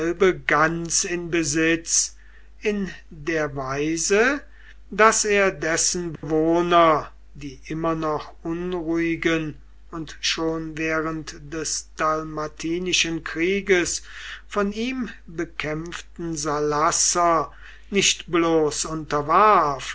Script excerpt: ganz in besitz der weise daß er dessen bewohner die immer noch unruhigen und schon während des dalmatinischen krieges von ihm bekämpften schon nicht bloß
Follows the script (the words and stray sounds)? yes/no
no